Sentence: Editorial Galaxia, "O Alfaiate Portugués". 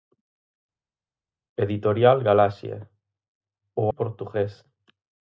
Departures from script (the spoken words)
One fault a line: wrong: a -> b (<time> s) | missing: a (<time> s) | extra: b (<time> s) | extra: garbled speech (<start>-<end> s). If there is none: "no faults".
missing: Alfaiate (3.9 s)